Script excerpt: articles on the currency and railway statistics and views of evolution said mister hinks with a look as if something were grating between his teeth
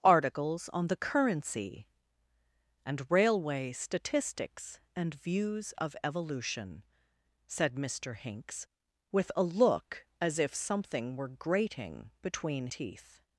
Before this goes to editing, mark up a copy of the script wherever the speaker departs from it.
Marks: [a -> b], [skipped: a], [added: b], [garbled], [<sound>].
articles on the currency and railway statistics and views of evolution said mister hinks with a look as if something were grating between [skipped: his] teeth